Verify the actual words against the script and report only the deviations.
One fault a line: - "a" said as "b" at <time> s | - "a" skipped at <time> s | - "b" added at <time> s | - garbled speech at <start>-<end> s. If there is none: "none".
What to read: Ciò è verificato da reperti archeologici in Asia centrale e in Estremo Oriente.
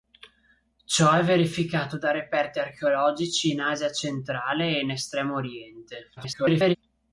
- garbled speech at 6.2-6.8 s